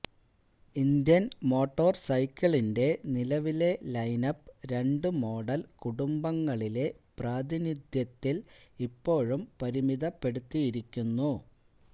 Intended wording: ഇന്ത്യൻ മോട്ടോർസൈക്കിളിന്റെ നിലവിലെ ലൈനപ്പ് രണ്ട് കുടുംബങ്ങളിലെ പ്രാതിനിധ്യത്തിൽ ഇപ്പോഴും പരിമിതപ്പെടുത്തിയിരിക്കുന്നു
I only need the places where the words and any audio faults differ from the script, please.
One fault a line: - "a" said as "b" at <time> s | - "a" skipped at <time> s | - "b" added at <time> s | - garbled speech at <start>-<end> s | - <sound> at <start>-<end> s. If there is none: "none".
- "മോഡൽ" added at 5.2 s